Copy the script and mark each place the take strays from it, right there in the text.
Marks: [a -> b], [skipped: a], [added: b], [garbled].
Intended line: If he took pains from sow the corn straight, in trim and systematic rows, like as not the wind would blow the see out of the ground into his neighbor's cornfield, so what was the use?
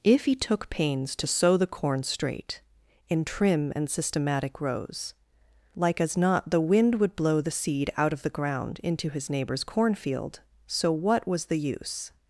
If he took pains [from -> to] sow the corn straight, in trim and systematic rows, like as not the wind would blow the [see -> seed] out of the ground into his neighbor's cornfield, so what was the use?